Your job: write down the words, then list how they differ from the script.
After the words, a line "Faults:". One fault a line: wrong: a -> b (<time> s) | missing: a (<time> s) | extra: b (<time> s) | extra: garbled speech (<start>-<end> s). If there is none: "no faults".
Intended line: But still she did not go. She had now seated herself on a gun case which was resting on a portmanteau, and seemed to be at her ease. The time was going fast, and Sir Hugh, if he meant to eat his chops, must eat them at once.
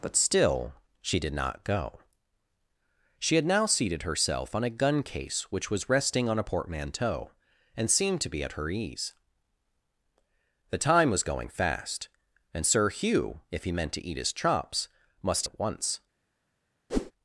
But still she did not go. She had now seated herself on a gun case which was resting on a portmanteau, and seemed to be at her ease. The time was going fast, and Sir Hugh, if he meant to eat his chops, must at once.
Faults:
missing: eat them (15.5 s)